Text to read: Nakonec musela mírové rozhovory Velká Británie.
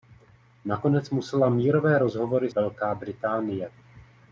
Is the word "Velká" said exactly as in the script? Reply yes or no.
yes